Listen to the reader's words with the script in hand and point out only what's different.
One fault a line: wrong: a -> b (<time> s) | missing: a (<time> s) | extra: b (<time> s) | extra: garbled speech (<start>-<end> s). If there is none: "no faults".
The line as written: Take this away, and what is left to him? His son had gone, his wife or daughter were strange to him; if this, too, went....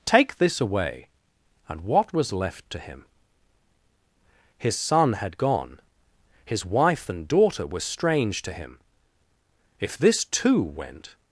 wrong: is -> was (2.1 s)
wrong: or -> and (7.1 s)